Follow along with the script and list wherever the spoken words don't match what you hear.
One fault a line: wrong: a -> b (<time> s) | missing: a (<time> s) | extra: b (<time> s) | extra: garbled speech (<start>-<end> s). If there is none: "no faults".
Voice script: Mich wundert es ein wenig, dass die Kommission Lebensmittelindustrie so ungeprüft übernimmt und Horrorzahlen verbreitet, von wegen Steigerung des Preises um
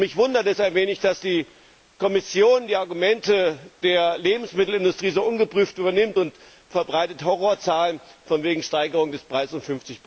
extra: die Argumente der (2.6 s)